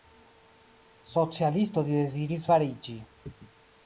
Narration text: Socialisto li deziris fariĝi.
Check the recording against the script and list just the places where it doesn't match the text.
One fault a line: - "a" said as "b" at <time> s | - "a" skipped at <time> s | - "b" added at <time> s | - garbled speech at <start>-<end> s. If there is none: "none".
none